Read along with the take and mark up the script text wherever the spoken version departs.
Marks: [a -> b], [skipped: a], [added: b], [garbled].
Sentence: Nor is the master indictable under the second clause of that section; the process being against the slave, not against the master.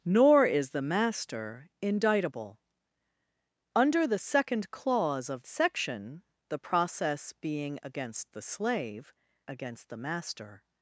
Nor is the master indictable under the second clause of [skipped: that] section; the process being against the slave, [skipped: not] against the master.